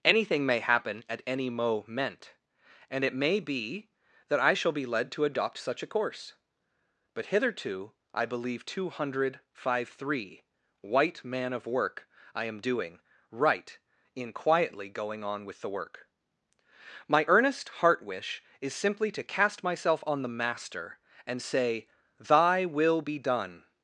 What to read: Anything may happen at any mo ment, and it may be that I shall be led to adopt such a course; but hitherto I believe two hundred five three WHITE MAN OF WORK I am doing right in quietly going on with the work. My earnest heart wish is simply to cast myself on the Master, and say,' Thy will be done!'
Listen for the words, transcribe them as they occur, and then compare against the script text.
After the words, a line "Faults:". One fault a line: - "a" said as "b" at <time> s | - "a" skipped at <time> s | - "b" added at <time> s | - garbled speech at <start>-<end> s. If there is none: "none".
Anything may happen at any mo ment, and it may be that I shall be led to adopt such a course; but hitherto I believe two hundred five three WHITE MAN OF WORK I am doing right in quietly going on with the work. My earnest heart wish is simply to cast myself on the Master, and say,' Thy will be done!'
Faults:
none